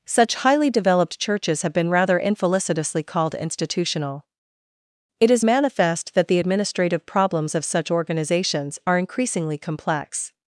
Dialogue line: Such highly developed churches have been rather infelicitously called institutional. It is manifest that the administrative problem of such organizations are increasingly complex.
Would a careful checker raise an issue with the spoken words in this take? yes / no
yes